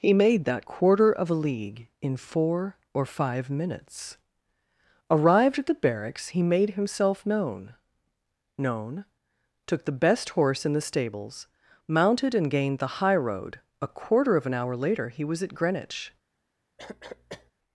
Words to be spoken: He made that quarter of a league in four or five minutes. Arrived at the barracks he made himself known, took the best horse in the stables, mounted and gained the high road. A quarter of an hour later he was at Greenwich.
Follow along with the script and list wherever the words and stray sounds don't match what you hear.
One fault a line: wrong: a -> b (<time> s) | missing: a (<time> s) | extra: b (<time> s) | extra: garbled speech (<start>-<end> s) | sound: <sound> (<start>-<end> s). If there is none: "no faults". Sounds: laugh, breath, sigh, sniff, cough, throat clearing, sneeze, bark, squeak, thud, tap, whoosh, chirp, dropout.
extra: known (8.6 s)
sound: cough (16.8-17.5 s)